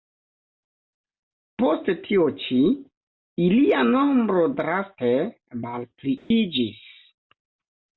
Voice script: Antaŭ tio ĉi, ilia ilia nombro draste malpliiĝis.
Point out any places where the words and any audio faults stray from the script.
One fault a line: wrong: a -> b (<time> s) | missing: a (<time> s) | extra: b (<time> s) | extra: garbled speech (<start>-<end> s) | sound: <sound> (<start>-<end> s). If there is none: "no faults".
wrong: Antaŭ -> Post (1.6 s)
missing: ilia (3.9 s)
sound: dropout (6.2-6.3 s)